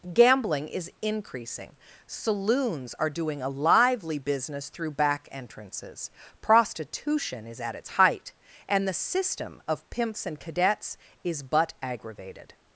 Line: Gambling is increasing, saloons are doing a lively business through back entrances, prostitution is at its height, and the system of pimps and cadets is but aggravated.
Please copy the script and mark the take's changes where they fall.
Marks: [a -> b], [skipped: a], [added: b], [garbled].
Gambling is increasing, saloons are doing a lively business through back entrances, prostitution is at its height, and the system of pimps and cadets is but aggravated.